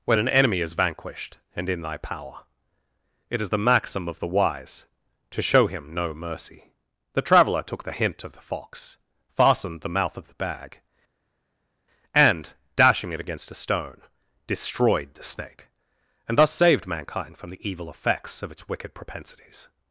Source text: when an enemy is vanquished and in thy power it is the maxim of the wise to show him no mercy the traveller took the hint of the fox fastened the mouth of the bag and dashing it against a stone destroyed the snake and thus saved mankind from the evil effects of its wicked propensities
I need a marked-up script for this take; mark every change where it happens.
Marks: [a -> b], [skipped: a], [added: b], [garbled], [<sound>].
when an enemy is vanquished and in thy power it is the maxim of the wise to show him no mercy the traveller took the hint of the fox fastened the mouth of the bag and dashing it against a stone destroyed the snake and thus saved mankind from the evil effects of its wicked propensities